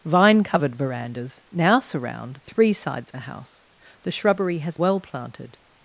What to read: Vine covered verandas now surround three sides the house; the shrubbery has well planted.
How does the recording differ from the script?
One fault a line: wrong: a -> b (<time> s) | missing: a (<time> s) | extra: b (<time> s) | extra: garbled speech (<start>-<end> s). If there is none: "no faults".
no faults